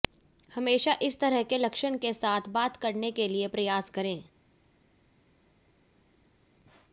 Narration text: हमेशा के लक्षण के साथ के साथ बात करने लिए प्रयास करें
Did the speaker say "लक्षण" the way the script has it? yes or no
no